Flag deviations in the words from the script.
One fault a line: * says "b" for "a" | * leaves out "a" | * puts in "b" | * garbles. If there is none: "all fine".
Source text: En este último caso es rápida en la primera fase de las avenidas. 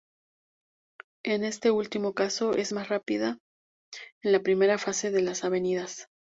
* puts in "más"